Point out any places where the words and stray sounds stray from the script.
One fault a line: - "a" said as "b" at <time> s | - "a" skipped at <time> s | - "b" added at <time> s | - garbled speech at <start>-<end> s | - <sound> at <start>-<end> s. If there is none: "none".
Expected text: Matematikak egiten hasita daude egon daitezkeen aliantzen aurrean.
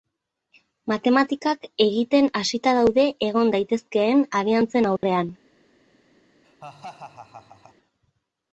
- dropout at 5.0-5.0 s
- laugh at 6.4-7.8 s